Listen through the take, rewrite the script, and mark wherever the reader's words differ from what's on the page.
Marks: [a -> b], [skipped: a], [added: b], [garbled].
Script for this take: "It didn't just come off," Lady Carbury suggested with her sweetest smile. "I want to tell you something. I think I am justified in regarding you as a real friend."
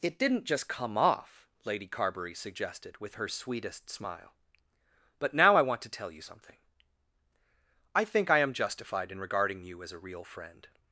"It didn't just come off," Lady Carbury suggested with her sweetest smile. [added: But now] "I want to tell you something. I think I am justified in regarding you as a real friend."